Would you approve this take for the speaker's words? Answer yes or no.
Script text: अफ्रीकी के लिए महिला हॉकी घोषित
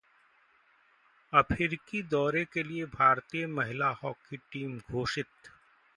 no